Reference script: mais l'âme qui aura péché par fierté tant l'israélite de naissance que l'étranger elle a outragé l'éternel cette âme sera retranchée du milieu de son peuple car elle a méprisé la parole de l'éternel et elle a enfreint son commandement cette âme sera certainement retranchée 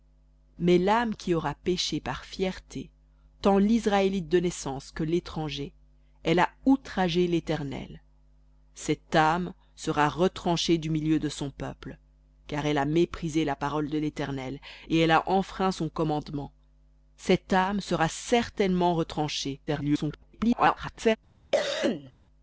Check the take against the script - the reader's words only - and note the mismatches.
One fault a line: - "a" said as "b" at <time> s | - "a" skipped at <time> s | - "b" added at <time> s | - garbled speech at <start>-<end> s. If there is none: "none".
- garbled speech at 19.7-21.2 s